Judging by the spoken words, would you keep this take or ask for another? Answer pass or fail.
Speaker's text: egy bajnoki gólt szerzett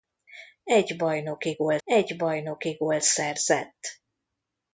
fail